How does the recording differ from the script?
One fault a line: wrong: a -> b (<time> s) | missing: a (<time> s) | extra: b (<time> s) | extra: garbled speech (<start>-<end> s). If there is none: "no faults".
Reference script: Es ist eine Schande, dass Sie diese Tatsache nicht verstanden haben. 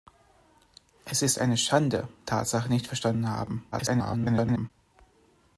missing: dass Sie diese (2.1 s)
extra: garbled speech (3.7-4.7 s)